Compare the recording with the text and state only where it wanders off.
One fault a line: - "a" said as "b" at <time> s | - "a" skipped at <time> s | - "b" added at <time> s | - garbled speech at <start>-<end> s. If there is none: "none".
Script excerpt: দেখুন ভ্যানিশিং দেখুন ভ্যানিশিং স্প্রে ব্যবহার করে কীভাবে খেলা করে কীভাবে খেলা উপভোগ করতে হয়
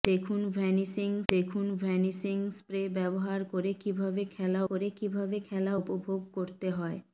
none